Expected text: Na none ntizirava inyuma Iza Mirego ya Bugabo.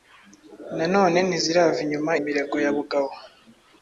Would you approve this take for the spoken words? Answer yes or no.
no